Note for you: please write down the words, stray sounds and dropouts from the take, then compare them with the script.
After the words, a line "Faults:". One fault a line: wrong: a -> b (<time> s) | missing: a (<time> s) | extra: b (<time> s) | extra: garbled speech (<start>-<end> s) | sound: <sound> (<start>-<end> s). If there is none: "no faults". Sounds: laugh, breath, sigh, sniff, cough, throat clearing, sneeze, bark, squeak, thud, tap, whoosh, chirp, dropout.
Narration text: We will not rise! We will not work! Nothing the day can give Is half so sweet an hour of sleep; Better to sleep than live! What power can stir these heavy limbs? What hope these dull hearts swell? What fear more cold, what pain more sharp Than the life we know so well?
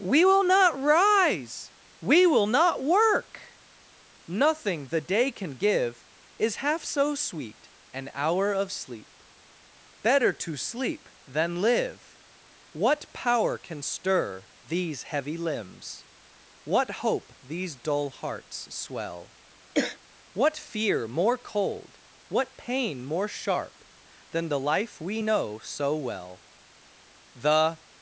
We will not rise! We will not work! Nothing the day can give Is half so sweet an hour of sleep; Better to sleep than live! What power can stir these heavy limbs? What hope these dull hearts swell? What fear more cold, what pain more sharp Than the life we know so well? The
Faults:
sound: throat clearing (19.7-20.0 s)
extra: The (27.3 s)